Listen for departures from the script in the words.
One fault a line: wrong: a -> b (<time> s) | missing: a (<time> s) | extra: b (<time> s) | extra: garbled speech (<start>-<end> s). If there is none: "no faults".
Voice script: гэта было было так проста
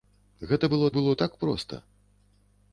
no faults